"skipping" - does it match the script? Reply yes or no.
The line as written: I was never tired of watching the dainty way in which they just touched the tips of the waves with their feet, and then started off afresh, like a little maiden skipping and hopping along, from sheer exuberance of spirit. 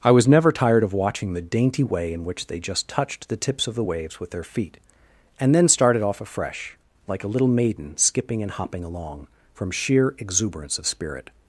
yes